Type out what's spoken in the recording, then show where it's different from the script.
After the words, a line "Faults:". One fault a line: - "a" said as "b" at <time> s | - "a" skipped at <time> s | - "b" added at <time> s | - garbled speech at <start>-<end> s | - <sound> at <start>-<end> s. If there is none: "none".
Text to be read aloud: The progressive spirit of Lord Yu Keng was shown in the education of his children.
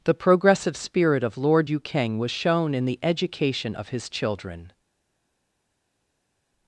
The progressive spirit of Lord Yu Keng was shown in the education of his children.
Faults:
none